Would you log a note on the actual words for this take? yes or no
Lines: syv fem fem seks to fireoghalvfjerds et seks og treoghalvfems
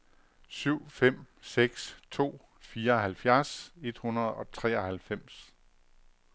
yes